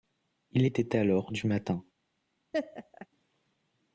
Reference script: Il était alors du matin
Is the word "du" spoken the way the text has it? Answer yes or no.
yes